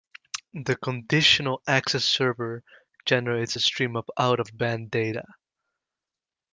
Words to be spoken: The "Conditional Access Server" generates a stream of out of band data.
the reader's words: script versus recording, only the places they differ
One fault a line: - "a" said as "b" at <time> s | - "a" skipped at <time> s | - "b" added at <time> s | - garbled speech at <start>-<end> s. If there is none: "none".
none